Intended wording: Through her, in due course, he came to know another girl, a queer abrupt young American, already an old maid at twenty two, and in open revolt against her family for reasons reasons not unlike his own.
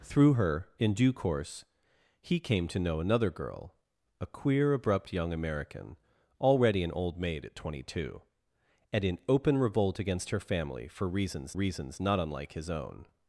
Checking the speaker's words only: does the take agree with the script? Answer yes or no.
yes